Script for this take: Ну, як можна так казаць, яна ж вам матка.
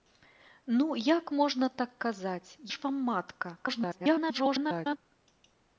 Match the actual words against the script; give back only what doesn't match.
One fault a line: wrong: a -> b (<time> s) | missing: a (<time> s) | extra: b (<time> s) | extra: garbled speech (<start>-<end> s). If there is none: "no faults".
missing: яна (2.5 s)
extra: garbled speech (3.5-5.0 s)